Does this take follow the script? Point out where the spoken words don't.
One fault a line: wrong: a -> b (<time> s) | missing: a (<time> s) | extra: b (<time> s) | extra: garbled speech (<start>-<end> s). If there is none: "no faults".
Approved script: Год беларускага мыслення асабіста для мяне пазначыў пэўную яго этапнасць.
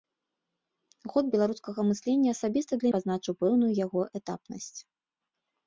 missing: мяне (2.9 s)